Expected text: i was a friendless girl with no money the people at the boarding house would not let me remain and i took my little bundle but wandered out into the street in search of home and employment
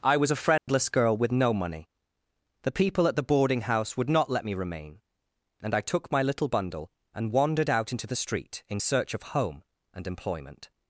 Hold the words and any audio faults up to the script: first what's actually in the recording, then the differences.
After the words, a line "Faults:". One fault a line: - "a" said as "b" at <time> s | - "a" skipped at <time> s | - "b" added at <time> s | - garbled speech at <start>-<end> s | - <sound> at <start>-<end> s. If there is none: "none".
i was a friendless girl with no money the people at the boarding house would not let me remain and i took my little bundle and wandered out into the street in search of home and employment
Faults:
- dropout at 0.6-0.7 s
- "but" said as "and" at 7.1 s